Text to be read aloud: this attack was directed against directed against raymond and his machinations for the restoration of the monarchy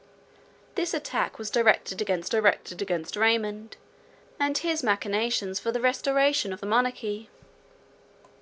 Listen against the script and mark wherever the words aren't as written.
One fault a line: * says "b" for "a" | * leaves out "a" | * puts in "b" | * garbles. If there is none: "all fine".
all fine